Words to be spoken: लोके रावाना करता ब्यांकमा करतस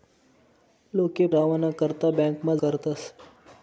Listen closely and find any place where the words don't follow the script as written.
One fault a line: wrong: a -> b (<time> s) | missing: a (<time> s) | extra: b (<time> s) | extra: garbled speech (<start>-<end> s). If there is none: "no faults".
no faults